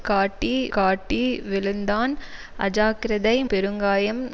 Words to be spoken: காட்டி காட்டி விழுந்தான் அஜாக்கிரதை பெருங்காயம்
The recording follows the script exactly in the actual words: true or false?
true